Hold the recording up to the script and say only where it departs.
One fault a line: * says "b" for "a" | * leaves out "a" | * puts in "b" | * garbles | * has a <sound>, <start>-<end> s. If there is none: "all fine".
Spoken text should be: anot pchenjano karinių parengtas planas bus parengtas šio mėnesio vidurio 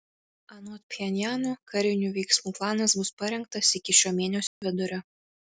* says "veiksmų" for "parengtas"
* puts in "iki"
* has a dropout, 4.5-4.6 s